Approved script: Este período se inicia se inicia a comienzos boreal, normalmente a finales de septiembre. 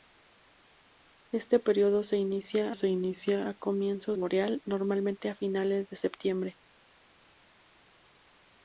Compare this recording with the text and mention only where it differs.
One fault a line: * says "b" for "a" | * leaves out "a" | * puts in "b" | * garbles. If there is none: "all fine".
all fine